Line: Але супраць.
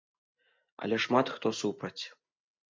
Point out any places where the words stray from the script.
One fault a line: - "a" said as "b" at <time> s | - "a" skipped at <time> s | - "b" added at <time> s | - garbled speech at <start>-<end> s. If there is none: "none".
- "шмат хто" added at 1.0 s